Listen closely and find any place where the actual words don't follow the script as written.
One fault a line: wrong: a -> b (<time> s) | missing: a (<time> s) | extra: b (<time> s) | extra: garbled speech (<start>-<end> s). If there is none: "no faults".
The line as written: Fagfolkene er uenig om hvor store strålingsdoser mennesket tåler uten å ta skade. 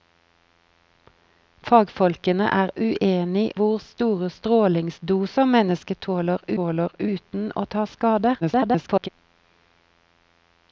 missing: om (3.4 s)
extra: tåler (6.6 s)
extra: garbled speech (8.4-9.1 s)